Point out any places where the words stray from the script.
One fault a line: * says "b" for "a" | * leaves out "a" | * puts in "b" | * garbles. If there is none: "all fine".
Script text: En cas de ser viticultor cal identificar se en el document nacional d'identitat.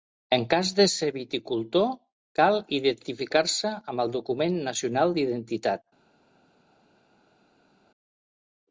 * says "amb" for "en"